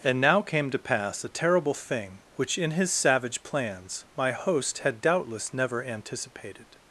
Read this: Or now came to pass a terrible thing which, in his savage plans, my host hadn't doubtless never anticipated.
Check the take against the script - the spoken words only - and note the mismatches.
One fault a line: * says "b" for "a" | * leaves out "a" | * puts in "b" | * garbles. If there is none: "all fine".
* says "And" for "Or"
* says "had" for "hadn't"